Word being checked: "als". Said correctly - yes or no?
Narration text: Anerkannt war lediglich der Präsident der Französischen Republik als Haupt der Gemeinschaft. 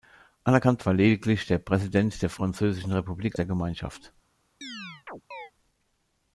no